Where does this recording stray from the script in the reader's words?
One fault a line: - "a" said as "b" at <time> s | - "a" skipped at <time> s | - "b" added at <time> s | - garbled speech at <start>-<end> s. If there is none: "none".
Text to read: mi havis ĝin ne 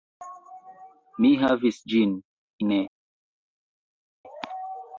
none